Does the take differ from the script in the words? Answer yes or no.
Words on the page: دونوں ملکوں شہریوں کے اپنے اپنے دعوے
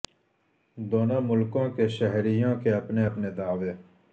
yes